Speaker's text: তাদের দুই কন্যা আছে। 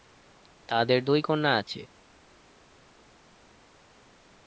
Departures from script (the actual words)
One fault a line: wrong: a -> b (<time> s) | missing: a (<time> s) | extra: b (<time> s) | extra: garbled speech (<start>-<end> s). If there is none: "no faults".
no faults